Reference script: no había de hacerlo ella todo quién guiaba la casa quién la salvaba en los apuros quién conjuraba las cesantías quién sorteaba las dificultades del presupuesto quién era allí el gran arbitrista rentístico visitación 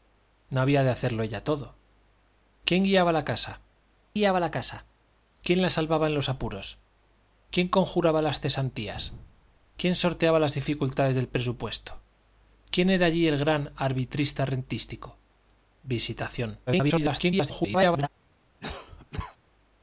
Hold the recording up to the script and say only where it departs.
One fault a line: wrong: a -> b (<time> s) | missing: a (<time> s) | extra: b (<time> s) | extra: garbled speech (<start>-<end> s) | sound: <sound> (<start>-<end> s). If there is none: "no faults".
extra: guiaba la casa (4.1 s)
extra: garbled speech (16.7-18.1 s)
sound: cough (18.6-19.4 s)